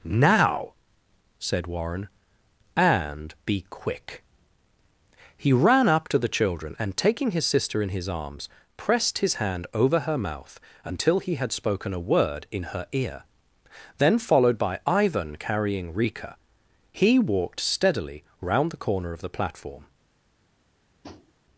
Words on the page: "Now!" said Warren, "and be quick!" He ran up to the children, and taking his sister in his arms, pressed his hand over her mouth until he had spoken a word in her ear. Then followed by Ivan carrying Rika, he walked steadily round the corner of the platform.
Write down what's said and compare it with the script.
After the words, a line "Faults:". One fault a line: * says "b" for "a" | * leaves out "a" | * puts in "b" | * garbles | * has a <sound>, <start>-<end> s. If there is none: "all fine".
"Now!" said Warren, "and be quick!" He ran up to the children, and taking his sister in his arms, pressed his hand over her mouth until he had spoken a word in her ear. Then followed by Ivan carrying Rika, he walked steadily round the corner of the platform.
Faults:
* has a tap, 21.0-21.3 s